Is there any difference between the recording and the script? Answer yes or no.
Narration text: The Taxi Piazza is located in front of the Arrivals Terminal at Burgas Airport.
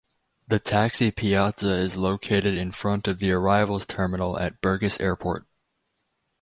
no